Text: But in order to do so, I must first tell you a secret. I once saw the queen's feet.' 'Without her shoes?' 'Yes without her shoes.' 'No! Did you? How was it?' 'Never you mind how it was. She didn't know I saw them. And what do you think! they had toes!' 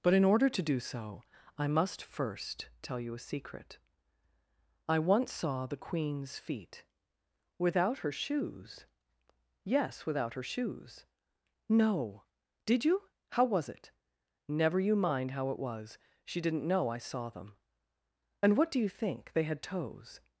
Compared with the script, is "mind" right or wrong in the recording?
right